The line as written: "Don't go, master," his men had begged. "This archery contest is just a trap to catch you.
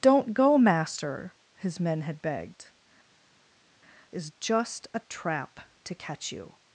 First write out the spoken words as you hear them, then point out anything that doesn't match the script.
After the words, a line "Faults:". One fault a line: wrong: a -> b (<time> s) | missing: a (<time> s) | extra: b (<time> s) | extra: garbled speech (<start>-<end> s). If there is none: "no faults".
"Don't go, master," his men had begged. "Is just a trap to catch you.
Faults:
missing: This archery contest (2.7 s)